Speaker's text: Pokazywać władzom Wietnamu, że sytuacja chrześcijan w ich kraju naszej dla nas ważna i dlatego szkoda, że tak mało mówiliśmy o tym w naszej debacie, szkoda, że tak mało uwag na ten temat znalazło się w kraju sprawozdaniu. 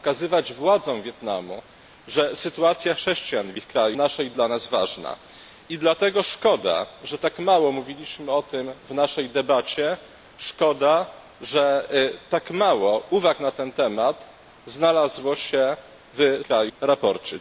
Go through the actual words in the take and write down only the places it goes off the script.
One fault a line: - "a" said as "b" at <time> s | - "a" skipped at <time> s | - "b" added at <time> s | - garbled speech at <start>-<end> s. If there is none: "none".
none